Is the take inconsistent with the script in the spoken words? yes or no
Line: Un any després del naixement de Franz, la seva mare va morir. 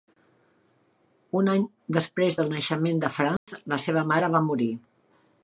no